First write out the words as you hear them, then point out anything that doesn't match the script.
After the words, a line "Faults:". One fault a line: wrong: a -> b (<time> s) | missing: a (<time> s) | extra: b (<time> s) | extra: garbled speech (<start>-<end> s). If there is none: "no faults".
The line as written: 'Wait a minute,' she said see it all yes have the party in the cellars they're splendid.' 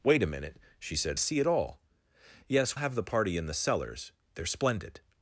'Wait a minute,' she said see it all yes have the party in the cellars they're splendid.'
Faults:
no faults